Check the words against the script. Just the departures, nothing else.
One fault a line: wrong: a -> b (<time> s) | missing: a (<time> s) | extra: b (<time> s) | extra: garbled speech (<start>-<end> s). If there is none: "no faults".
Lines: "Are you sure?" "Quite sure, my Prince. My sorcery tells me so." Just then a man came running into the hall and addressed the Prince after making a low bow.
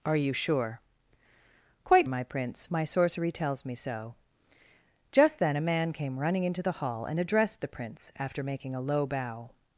missing: sure (2.1 s)